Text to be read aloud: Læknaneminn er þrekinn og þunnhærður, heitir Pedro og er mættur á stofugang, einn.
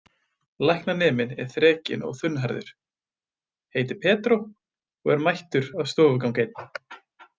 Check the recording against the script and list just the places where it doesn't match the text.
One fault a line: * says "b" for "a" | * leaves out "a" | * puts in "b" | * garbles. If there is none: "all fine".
all fine